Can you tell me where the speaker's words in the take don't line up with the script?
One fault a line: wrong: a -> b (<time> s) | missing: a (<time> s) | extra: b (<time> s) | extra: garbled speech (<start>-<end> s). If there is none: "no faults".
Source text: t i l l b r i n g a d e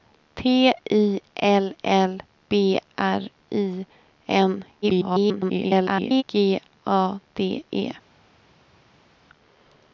extra: garbled speech (4.8-6.2 s)